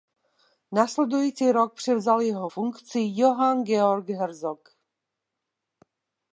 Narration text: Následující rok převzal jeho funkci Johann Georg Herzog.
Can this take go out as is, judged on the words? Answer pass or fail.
pass